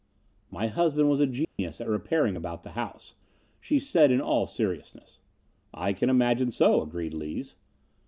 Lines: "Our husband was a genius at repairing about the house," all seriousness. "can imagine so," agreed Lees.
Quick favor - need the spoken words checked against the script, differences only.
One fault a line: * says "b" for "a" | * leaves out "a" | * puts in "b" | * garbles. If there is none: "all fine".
* says "My" for "Our"
* puts in "she said in"
* puts in "I"